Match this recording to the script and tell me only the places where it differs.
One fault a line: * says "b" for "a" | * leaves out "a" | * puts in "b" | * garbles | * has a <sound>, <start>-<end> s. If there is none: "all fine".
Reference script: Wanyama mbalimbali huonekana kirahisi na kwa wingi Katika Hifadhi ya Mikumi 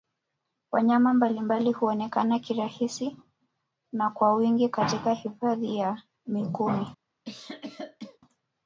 * has a cough, 7.2-8.2 s